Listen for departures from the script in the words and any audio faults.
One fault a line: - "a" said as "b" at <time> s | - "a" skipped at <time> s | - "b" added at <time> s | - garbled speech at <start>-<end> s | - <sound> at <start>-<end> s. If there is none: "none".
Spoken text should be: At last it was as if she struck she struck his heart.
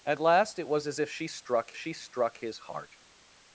none